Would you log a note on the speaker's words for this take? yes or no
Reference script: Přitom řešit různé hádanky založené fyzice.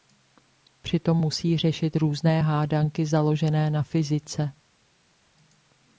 yes